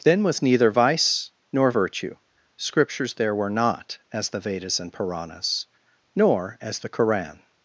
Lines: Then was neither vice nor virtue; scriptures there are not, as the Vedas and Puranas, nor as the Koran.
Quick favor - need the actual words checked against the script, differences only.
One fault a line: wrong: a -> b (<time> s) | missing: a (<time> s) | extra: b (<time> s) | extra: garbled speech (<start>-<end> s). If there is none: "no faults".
wrong: are -> were (3.3 s)